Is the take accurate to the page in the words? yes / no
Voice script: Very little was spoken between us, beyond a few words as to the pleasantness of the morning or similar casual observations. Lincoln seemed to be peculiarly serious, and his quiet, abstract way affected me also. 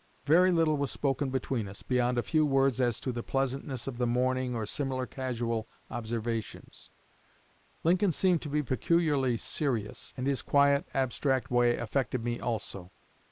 yes